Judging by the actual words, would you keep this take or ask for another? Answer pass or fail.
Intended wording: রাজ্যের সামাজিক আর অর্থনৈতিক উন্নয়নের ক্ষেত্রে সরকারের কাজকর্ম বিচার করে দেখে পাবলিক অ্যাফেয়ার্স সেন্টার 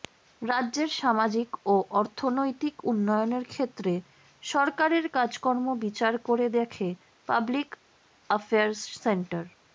fail